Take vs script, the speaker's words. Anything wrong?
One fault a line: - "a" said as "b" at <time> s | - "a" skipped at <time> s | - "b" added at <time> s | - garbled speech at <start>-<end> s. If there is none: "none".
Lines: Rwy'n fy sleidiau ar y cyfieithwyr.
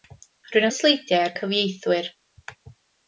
none